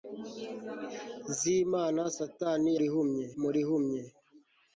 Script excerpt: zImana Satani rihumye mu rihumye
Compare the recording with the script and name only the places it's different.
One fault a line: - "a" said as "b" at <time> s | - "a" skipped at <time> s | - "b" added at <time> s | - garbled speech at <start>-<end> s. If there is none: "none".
none